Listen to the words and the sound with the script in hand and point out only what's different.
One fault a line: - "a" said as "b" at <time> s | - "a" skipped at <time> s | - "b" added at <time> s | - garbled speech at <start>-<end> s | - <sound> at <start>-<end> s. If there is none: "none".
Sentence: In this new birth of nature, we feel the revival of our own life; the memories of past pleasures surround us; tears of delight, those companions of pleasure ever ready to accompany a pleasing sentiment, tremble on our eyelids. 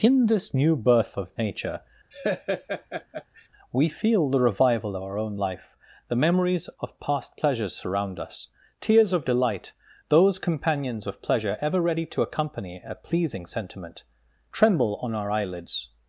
- laugh at 2.1-3.5 s